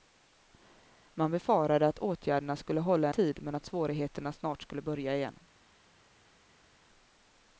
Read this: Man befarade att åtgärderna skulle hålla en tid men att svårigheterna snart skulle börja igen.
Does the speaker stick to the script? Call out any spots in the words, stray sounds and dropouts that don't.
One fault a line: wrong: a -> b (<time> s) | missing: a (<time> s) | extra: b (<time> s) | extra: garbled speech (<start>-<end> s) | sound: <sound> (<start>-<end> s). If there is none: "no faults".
missing: en (3.1 s)